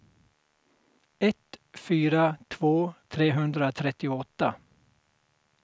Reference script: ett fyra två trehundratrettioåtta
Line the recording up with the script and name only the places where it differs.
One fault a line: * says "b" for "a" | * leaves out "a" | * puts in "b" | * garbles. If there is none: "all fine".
all fine